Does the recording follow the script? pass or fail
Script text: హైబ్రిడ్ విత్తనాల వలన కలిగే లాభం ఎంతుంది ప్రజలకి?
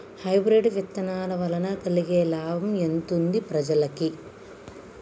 pass